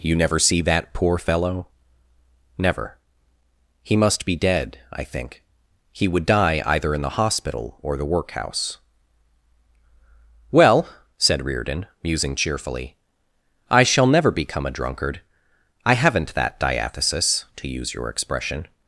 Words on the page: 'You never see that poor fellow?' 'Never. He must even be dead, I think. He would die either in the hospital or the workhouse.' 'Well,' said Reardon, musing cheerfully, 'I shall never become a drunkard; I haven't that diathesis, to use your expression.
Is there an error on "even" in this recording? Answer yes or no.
yes